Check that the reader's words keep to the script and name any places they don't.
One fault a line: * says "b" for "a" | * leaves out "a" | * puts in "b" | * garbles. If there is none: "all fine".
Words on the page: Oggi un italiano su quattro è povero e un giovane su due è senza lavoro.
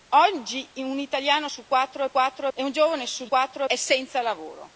* says "quattro" for "povero"
* says "quattro" for "due"